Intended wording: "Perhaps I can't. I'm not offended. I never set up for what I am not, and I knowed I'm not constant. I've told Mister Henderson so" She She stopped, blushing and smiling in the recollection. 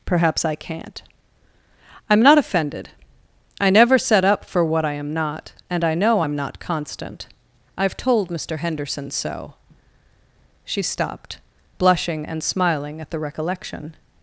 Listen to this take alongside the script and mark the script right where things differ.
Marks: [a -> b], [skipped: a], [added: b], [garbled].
"Perhaps I can't. I'm not offended. I never set up for what I am not, and I [knowed -> know] I'm not constant. I've told Mister Henderson so" She [skipped: She] stopped, blushing and smiling [in -> at] the recollection.